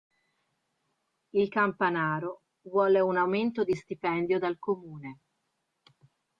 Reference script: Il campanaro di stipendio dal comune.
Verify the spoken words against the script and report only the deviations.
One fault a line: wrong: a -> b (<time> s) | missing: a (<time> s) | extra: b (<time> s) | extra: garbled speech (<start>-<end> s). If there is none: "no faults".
extra: vuole un aumento (2.6 s)